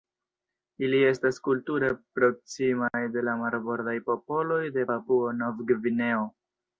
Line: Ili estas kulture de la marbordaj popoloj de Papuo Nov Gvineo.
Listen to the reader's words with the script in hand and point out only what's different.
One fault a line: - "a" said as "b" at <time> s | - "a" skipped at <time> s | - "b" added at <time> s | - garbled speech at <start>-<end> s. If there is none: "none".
- "proksimaj" added at 2.2 s